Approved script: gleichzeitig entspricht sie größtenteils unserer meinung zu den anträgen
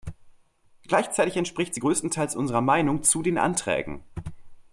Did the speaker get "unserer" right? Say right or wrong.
right